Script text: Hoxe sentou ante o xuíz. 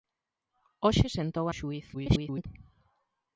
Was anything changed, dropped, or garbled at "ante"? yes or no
yes